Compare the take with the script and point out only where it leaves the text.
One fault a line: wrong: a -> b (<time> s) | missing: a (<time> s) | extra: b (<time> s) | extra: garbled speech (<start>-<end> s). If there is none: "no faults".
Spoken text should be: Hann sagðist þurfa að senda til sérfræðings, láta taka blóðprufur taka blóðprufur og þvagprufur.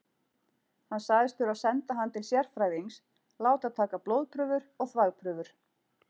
extra: hann (2.0 s)
missing: taka blóðprufur (4.7 s)